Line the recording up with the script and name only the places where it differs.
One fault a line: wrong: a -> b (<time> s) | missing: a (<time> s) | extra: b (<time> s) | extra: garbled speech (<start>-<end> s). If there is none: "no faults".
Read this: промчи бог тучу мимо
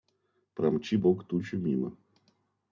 no faults